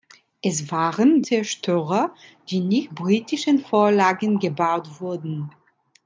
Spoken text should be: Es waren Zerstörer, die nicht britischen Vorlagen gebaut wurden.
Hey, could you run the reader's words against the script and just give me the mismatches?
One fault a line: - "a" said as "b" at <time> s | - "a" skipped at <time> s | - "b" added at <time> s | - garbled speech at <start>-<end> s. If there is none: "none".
none